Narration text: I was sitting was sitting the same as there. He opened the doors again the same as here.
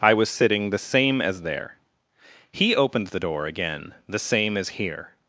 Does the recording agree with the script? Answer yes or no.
no